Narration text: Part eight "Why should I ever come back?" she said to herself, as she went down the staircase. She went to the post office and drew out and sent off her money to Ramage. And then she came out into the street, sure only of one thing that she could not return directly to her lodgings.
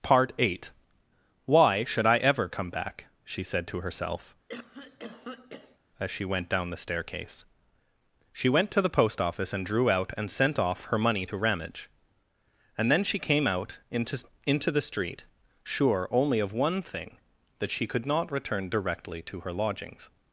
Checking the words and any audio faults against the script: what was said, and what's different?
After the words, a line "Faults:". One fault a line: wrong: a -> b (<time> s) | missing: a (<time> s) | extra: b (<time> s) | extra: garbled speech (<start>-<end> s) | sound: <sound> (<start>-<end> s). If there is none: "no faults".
Part eight "Why should I ever come back?" she said to herself, as she went down the staircase. She went to the post office and drew out and sent off her money to Ramage. And then she came out into into the street, sure only of one thing that she could not return directly to her lodgings.
Faults:
sound: cough (4.5-5.8 s)
extra: into (14.4 s)